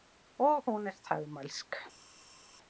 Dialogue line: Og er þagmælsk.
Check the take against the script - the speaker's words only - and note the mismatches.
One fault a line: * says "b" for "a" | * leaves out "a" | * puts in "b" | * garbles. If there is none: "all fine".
* puts in "hún"